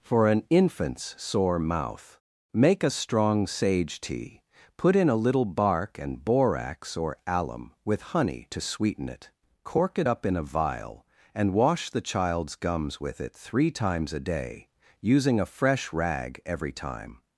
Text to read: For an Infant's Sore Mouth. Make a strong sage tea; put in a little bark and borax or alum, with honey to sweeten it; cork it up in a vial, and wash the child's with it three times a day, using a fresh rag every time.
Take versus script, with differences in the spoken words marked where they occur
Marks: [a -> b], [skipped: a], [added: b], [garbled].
For an Infant's Sore Mouth. Make a strong sage tea; put in a little bark and borax or alum, with honey to sweeten it; cork it up in a vial, and wash the child's [added: gums] with it three times a day, using a fresh rag every time.